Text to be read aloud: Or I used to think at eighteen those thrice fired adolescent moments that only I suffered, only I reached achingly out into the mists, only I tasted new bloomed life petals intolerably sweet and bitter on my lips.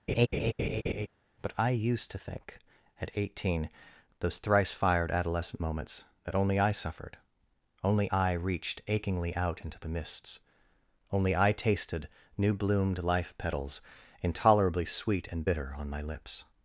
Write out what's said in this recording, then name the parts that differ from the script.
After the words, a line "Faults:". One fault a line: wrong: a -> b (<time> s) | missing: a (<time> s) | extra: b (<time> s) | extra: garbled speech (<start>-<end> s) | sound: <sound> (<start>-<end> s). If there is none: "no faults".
But I used to think at eighteen those thrice fired adolescent moments that only I suffered, only I reached achingly out into the mists, only I tasted new bloomed life petals intolerably sweet and bitter on my lips.
Faults:
sound: laugh (0.1-1.1 s)
wrong: Or -> But (1.4 s)